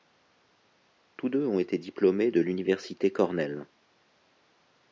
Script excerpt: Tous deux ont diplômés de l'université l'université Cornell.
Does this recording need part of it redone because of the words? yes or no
yes